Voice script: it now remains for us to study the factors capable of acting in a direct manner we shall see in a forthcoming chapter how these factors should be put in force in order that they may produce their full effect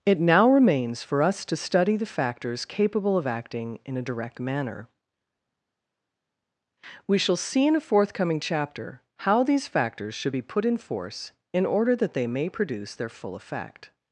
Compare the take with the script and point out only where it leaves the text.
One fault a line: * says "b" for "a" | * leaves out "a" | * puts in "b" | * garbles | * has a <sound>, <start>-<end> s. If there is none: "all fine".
all fine